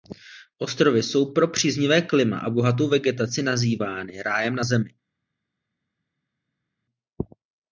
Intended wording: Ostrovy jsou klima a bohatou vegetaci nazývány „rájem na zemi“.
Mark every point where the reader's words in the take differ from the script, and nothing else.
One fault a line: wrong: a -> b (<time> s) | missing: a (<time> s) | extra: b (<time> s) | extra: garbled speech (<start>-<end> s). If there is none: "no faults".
extra: pro příznivé (1.3 s)